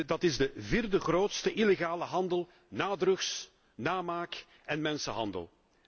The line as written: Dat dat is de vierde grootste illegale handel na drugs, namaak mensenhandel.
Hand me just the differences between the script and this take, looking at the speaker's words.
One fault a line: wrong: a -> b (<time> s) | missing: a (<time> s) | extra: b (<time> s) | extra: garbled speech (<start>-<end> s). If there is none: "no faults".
missing: dat (0.2 s)
extra: en (4.7 s)